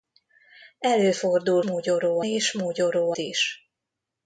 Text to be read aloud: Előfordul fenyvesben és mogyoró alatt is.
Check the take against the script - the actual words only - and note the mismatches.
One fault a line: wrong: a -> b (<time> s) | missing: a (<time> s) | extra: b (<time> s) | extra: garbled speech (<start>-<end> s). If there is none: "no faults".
wrong: fenyvesben -> mogyoró (1.6 s)
missing: alatt (3.1 s)